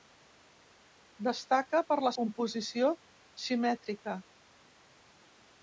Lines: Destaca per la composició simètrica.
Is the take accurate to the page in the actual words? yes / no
yes